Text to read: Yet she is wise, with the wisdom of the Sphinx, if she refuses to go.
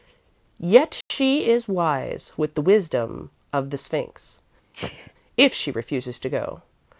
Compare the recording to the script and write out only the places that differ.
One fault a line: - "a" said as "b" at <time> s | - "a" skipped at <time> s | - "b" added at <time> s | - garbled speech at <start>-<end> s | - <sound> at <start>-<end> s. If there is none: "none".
- dropout at 1.0-1.1 s
- sneeze at 4.7-5.1 s